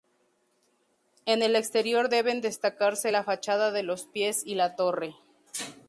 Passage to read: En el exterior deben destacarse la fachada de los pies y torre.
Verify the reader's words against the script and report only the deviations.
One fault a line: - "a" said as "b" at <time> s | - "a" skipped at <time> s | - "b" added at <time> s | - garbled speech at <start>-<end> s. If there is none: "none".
- "la" added at 4.6 s